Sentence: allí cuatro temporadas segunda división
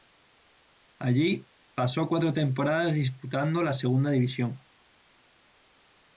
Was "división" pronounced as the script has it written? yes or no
yes